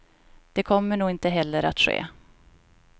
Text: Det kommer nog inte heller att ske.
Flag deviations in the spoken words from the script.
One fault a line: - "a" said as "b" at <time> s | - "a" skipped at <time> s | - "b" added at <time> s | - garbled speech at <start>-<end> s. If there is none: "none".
none